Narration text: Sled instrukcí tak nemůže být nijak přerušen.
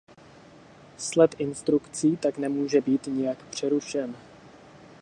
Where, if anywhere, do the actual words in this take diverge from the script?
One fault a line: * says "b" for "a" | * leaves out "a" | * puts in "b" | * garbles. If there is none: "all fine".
all fine